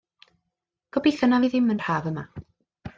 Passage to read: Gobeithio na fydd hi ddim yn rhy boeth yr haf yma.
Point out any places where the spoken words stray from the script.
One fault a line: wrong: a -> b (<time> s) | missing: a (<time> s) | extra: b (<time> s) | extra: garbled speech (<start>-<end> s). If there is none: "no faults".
missing: fydd (1.4 s)
missing: rhy boeth (1.8 s)